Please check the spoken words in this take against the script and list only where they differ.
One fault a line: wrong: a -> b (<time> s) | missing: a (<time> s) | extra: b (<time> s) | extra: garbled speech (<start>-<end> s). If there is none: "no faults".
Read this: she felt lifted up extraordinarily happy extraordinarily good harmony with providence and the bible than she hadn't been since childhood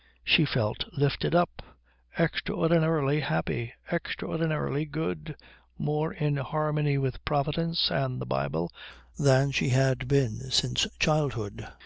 extra: more in (5.8 s)
wrong: hadn't -> had (9.7 s)